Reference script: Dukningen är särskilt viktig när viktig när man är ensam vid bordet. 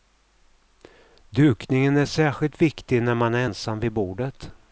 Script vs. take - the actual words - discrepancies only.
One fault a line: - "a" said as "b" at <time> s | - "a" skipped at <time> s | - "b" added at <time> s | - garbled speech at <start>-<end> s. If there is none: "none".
- "viktig när" skipped at 3.1 s